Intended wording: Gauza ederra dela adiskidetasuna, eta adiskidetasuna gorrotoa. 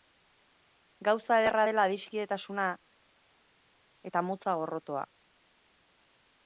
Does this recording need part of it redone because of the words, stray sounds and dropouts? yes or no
yes